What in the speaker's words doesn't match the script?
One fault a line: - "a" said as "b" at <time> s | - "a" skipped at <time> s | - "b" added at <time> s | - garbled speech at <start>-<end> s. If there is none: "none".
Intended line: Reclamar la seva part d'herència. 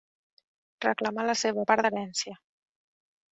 none